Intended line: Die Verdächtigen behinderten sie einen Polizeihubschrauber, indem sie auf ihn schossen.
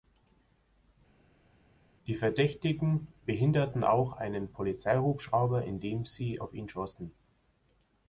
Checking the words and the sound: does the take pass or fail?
fail